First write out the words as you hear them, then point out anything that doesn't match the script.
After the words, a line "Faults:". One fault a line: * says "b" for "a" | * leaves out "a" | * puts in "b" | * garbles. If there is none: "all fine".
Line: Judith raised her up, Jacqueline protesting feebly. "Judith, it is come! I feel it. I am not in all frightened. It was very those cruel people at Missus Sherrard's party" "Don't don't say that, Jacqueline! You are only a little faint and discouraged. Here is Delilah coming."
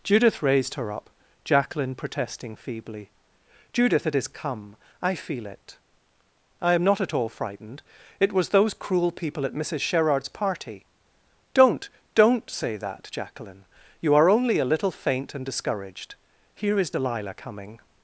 Judith raised her up, Jacqueline protesting feebly. "Judith, it is come! I feel it. I am not at all frightened. It was those cruel people at Missus Sherrard's party" "Don't don't say that, Jacqueline! You are only a little faint and discouraged. Here is Delilah coming."
Faults:
* says "at" for "in"
* leaves out "very"